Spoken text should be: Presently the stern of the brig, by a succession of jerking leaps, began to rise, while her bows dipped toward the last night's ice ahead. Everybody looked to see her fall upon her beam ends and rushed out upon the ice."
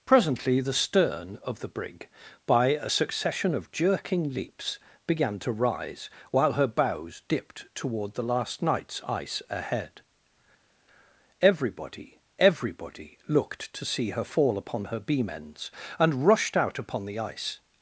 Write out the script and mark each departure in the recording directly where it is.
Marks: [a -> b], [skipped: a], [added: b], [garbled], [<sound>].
Presently the stern of the brig, by a succession of jerking leaps, began to rise, while her bows dipped toward the last night's ice ahead. Everybody [added: Everybody] looked to see her fall upon her beam ends and rushed out upon the ice."